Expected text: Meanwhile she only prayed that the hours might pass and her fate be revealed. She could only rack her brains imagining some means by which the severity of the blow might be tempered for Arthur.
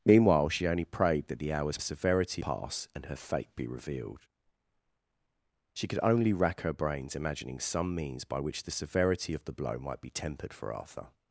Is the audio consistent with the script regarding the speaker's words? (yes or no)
no